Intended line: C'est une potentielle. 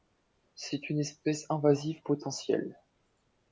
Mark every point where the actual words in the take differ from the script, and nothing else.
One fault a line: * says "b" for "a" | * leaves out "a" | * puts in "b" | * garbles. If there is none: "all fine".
* puts in "espèce invasive"